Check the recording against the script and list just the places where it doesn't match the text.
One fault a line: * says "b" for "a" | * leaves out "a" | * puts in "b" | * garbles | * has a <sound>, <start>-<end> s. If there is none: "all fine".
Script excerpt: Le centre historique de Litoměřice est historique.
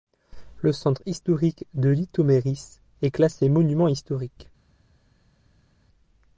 * puts in "classé monument"